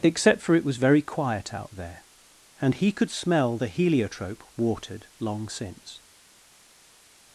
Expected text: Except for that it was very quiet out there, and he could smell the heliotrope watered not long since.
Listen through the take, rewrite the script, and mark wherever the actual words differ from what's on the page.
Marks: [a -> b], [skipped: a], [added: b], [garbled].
Except for [skipped: that] it was very quiet out there, and he could smell the heliotrope watered [skipped: not] long since.